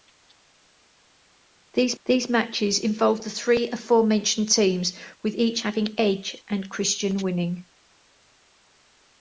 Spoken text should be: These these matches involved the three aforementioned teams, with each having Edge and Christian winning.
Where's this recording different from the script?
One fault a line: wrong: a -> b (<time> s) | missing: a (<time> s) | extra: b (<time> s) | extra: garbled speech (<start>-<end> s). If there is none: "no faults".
no faults